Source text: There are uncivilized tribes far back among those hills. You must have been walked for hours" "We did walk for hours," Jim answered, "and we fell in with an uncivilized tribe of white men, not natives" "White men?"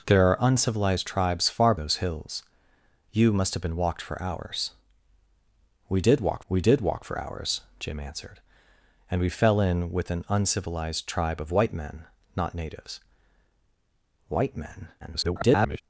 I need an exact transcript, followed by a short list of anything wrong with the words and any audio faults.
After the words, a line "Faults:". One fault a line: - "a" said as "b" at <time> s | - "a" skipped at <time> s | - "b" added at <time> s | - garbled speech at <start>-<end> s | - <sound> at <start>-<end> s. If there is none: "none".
There are uncivilized tribes far those hills. You must have been walked for hours" "We did walk we did walk for hours," Jim answered, "and we fell in with an uncivilized tribe of white men, not natives" "White men?" [garbled]
Faults:
- "back among" skipped at 1.8 s
- "we did walk" added at 6.5 s
- garbled speech at 15.0-15.8 s